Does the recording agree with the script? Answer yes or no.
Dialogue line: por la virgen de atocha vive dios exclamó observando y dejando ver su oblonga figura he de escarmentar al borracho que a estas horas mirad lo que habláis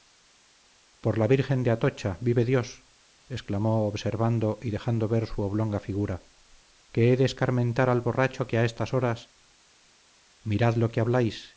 no